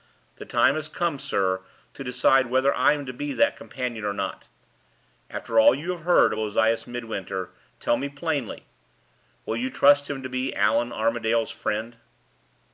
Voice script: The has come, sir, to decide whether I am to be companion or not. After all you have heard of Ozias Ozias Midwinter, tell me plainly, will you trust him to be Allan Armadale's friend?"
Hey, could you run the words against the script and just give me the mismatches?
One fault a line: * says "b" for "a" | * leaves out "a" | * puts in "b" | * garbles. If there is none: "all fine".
* puts in "time"
* puts in "that"
* leaves out "Ozias"